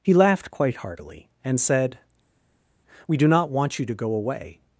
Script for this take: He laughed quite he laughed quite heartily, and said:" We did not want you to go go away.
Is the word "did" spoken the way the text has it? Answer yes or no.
no